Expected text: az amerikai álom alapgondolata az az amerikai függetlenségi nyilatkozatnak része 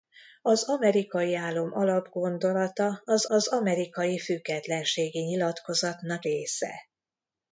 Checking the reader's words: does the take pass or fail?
pass